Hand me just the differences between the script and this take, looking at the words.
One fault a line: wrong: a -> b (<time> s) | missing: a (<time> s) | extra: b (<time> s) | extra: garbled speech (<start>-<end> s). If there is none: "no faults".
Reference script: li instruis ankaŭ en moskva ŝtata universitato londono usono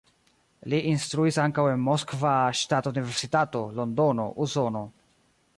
no faults